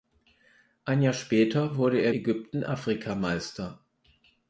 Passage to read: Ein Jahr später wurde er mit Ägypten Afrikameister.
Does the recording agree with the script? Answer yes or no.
no